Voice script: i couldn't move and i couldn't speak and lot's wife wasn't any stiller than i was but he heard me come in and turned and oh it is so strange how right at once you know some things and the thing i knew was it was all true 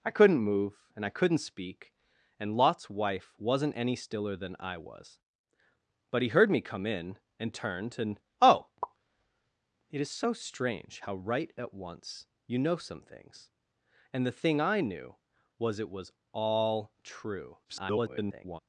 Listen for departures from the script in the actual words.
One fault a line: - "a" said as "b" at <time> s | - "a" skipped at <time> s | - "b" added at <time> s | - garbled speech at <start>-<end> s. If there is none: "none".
- garbled speech at 17.6-18.6 s